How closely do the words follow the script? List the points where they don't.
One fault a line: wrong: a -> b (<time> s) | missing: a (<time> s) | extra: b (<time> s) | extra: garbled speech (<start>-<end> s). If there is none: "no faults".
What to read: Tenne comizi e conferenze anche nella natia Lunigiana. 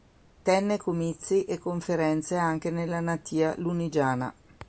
no faults